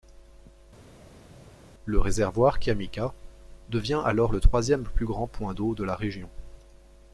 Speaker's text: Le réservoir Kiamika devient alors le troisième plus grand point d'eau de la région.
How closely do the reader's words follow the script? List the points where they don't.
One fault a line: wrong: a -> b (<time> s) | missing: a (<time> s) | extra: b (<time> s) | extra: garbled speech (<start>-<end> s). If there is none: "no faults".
no faults